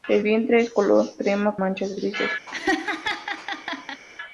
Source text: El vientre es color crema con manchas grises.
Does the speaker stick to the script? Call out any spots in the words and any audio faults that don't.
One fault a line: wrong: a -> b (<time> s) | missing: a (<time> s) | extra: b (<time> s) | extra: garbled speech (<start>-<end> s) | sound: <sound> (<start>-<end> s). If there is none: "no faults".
missing: con (1.6 s)
sound: laugh (2.5-4.0 s)